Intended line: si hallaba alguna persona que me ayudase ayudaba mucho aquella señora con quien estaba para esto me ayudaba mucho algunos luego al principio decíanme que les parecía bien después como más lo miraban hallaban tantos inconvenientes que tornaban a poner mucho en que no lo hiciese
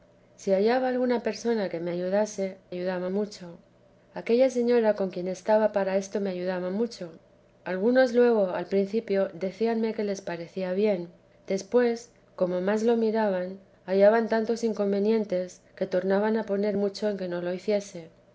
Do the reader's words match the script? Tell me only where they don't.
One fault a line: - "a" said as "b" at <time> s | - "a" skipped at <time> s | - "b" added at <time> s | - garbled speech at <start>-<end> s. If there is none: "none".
none